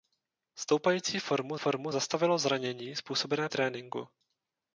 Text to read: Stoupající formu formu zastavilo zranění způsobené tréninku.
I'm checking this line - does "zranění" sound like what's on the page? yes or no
yes